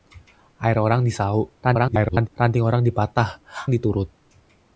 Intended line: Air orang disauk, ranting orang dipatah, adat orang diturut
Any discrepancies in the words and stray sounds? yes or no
yes